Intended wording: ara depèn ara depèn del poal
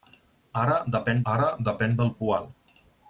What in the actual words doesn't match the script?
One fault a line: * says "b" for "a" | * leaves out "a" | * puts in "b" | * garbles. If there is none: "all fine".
all fine